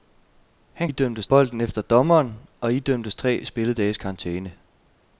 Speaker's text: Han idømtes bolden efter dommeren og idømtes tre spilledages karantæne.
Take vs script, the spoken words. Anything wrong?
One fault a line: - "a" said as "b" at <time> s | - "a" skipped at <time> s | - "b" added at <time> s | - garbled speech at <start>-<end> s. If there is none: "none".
none